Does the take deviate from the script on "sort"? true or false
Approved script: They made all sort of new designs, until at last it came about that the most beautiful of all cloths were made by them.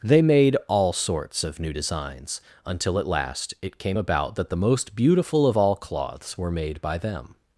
true